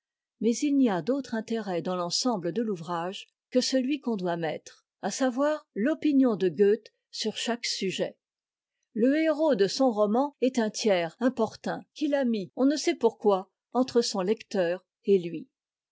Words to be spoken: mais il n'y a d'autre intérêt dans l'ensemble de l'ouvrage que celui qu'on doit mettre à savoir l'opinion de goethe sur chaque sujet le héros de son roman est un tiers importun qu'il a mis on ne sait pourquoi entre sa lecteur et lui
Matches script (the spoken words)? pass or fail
fail